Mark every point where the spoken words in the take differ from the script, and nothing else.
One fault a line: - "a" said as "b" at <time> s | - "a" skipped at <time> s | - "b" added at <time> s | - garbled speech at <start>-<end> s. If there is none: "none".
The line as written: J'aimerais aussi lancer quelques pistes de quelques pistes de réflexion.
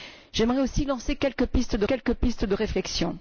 none